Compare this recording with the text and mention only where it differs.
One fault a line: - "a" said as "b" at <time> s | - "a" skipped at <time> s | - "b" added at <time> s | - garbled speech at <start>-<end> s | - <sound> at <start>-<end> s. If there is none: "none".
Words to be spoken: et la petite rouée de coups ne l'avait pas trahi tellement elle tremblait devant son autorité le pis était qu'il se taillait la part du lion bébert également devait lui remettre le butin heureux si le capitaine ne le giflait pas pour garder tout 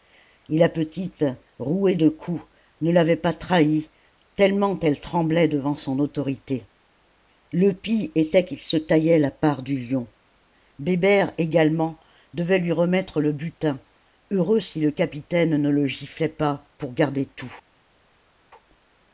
none